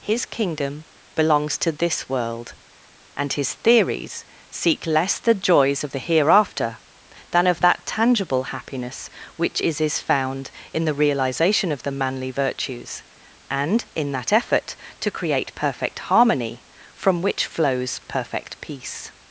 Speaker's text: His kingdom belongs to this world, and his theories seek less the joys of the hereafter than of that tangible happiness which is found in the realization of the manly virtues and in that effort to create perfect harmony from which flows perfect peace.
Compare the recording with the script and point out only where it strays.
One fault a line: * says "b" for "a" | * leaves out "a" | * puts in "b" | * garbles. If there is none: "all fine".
* puts in "is"